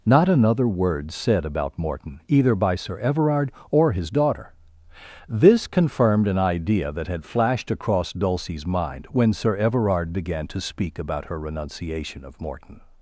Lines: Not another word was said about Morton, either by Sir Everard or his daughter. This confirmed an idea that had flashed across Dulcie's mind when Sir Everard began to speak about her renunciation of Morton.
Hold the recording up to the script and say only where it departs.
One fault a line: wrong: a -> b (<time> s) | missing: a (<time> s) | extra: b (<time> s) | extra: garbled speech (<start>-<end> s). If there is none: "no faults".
missing: was (1.1 s)